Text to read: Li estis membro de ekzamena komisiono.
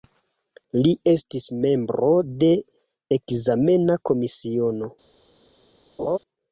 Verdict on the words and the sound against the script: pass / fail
fail